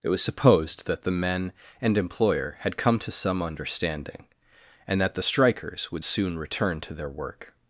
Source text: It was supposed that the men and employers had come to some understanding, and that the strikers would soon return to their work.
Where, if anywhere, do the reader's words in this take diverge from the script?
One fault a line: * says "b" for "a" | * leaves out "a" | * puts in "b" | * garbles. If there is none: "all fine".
* says "employer" for "employers"